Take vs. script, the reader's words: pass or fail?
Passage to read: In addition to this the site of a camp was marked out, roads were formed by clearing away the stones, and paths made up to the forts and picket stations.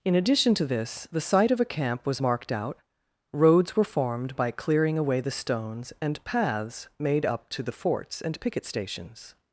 pass